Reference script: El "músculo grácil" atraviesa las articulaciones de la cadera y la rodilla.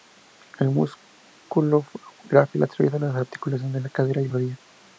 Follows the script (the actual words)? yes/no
no